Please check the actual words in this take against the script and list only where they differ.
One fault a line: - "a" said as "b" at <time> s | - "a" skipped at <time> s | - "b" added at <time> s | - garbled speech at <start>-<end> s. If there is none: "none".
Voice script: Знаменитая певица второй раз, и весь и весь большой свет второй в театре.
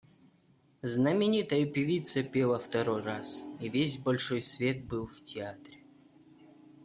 - "пела" added at 2.2 s
- "и весь" skipped at 4.0 s
- "второй" said as "был" at 4.8 s